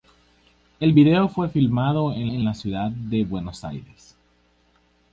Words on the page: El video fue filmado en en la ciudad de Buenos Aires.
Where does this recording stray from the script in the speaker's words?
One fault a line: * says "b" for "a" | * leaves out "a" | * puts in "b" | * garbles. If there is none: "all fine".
all fine